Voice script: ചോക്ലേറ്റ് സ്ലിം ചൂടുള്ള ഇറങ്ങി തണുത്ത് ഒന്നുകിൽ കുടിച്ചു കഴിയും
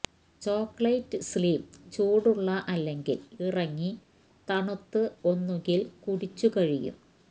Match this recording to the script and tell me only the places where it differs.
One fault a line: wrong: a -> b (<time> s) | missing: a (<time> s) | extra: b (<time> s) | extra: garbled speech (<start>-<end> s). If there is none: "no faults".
extra: അല്ലെങ്കിൽ (2.7 s)